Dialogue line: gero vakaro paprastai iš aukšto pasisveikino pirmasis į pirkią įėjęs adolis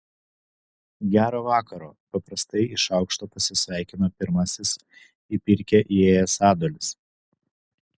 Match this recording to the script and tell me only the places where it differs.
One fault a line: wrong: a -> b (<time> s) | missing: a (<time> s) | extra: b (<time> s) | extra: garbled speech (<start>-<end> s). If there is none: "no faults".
no faults